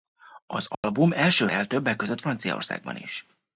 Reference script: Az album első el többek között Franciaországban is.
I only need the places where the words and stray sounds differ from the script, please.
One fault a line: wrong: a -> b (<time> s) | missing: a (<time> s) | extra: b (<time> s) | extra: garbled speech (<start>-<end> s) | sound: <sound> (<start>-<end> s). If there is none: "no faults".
sound: dropout (0.7-0.8 s)